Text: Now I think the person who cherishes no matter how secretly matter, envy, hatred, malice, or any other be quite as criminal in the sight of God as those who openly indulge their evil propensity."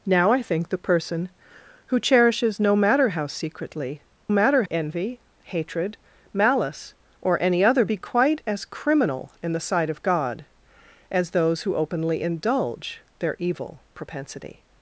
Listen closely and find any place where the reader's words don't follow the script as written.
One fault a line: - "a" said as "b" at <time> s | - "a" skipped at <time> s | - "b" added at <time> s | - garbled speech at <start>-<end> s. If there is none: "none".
none